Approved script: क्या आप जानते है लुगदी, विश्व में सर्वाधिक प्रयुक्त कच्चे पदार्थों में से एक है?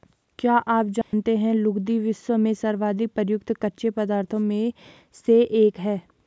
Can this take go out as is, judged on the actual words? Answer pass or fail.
pass